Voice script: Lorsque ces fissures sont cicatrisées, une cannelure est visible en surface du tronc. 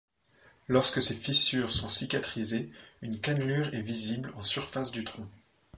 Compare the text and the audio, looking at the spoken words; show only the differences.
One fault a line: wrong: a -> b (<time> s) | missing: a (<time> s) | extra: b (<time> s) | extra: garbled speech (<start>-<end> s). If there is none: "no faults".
no faults